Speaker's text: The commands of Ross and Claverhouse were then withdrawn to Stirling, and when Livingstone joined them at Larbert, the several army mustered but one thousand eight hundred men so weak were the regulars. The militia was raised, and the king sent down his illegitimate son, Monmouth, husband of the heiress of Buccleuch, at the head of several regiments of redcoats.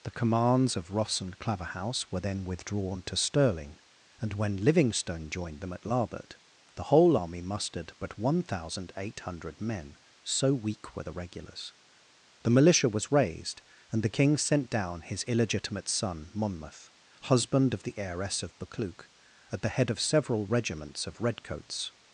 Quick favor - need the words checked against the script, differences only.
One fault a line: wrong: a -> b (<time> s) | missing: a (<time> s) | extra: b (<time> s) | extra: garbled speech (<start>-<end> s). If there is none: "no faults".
wrong: several -> whole (6.9 s)